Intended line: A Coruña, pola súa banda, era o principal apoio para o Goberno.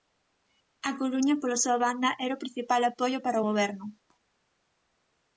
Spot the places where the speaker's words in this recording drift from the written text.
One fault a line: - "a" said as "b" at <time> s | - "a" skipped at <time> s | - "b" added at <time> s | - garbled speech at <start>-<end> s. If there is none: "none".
none